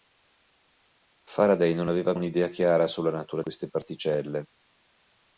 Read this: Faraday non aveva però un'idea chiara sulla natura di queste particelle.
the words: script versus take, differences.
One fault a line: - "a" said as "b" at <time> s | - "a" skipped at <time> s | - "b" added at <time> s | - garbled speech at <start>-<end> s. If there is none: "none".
- "però" skipped at 2.1 s
- "di" skipped at 3.4 s